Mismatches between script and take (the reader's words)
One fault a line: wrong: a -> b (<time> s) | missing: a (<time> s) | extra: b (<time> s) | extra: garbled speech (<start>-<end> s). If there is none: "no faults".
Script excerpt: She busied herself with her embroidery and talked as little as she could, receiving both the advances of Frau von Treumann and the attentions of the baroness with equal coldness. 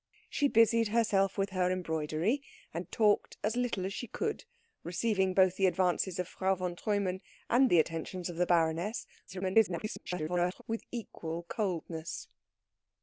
extra: garbled speech (9.3-10.6 s)